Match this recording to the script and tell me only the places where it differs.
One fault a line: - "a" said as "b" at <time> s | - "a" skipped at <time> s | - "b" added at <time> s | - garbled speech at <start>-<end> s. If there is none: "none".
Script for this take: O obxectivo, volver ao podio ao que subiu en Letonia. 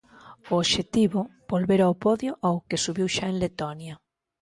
- "xa" added at 3.1 s